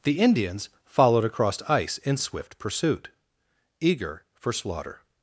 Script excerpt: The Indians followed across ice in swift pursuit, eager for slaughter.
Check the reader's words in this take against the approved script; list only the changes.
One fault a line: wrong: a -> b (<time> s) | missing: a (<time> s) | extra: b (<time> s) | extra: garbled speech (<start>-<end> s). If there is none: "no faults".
no faults